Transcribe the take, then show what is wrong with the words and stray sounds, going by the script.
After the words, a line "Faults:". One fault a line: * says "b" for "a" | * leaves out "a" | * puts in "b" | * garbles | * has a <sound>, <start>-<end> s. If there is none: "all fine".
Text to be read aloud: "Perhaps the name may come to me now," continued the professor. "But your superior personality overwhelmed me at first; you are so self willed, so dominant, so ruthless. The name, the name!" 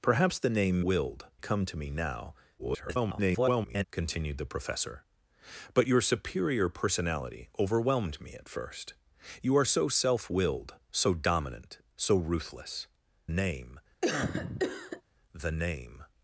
"Perhaps the name willed come to me now," [garbled] continued the professor. "But your superior personality overwhelmed me at first; you are so self willed, so dominant, so ruthless. Name, the name!"
Faults:
* says "willed" for "may"
* garbles
* leaves out "The"
* has a cough, 14.0-15.0 s